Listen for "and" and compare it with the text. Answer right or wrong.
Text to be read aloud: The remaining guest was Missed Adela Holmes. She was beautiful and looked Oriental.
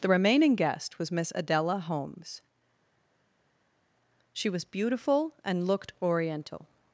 right